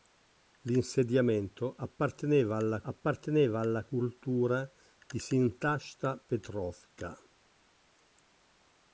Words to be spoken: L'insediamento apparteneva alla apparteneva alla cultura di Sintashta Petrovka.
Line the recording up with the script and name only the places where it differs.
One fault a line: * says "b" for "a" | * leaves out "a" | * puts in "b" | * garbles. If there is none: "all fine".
all fine